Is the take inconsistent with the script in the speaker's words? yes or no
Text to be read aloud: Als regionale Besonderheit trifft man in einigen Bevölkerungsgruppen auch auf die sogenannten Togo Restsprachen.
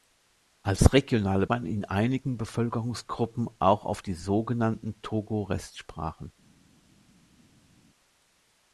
yes